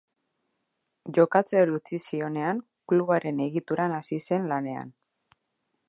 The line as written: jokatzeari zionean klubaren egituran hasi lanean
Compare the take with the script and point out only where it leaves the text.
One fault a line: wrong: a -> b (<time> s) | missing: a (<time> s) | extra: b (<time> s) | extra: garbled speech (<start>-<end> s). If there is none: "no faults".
extra: utzi (1.8 s)
extra: zen (4.3 s)